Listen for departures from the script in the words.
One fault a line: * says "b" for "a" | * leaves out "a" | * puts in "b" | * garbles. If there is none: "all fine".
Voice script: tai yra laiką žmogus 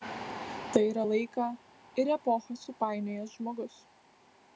* puts in "ir epochą supainiojęs"